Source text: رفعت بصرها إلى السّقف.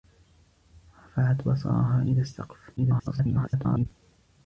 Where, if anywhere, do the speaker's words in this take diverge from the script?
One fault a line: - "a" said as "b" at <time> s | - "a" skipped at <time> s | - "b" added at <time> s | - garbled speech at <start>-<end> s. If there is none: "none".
- garbled speech at 2.8-3.9 s